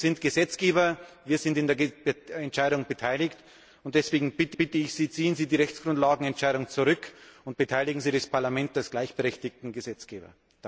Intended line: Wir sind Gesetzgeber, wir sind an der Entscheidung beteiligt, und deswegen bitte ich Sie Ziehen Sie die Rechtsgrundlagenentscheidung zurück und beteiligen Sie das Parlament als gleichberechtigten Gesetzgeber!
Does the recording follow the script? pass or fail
fail